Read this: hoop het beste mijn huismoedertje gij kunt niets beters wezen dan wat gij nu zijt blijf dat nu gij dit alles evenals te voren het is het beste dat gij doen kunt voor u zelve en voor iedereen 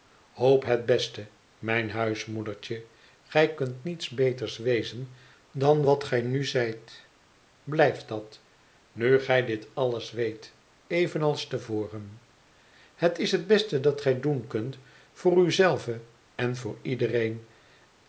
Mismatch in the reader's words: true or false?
true